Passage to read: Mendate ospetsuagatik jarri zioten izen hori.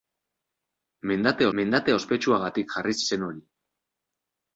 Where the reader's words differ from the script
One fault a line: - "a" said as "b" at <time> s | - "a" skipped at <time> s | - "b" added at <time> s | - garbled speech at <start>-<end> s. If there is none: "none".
- "mendate" added at 1.6 s
- "zioten" skipped at 3.0 s